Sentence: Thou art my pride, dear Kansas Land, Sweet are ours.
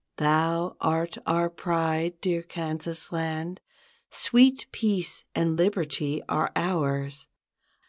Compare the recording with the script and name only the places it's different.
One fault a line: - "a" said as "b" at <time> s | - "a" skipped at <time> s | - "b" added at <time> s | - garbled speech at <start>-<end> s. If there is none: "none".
- "my" said as "our" at 1.3 s
- "peace and liberty" added at 4.7 s